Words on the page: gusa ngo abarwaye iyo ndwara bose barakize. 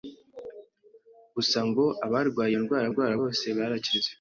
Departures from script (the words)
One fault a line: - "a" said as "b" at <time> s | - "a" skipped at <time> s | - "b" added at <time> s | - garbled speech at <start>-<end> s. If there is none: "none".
- "ndwara" added at 2.9 s